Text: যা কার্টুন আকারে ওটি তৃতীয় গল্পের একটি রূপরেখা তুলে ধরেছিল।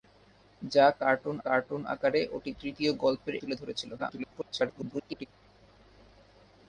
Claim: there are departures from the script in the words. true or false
true